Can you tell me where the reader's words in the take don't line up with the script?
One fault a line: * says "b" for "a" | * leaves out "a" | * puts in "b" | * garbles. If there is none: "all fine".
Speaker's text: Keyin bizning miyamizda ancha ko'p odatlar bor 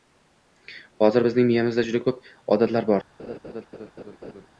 * says "Hozir" for "Keyin"
* says "juda" for "ancha"